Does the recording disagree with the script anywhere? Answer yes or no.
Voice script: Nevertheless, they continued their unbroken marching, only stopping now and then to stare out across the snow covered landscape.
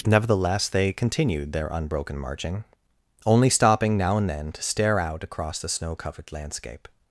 no